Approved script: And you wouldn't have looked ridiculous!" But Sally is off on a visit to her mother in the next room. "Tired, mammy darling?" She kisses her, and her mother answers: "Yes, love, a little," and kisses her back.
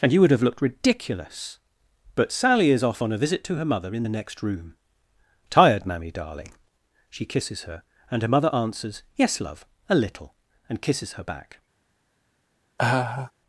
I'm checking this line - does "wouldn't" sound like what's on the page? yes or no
no